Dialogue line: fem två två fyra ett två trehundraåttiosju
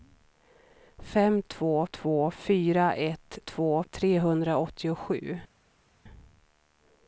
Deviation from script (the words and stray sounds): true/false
false